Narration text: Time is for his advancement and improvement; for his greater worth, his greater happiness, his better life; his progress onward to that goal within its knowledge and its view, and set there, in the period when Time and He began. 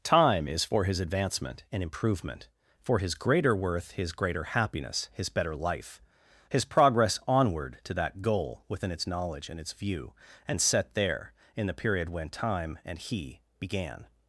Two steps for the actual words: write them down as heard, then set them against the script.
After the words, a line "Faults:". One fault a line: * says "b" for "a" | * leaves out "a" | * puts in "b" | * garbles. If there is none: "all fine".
Time is for his advancement and improvement; for his greater worth, his greater happiness, his better life; his progress onward to that goal within its knowledge and its view, and set there, in the period when Time and He began.
Faults:
all fine